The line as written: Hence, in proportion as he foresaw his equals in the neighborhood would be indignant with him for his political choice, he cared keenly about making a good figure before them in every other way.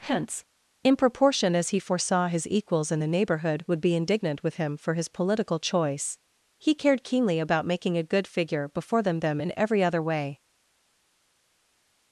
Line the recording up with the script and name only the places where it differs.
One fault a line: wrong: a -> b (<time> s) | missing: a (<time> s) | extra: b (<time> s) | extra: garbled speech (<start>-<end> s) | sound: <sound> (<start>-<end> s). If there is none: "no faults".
extra: them (9.2 s)